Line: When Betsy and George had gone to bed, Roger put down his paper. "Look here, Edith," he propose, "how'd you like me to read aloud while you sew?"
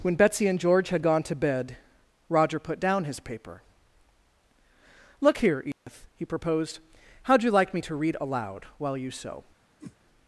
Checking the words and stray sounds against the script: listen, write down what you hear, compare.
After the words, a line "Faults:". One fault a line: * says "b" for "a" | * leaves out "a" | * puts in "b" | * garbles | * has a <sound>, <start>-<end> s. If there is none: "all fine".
When Betsy and George had gone to bed, Roger put down his paper. "Look here, Edith," he proposed, "how'd you like me to read aloud while you sew?"
Faults:
* has a dropout, 5.7-5.9 s
* says "proposed" for "propose"
* has a whoosh, 9.8-10.0 s